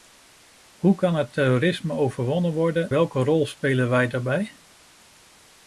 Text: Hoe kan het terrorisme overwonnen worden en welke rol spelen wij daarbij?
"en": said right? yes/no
no